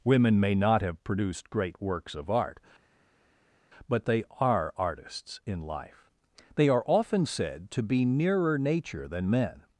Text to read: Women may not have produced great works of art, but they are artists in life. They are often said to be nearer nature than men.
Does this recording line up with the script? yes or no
yes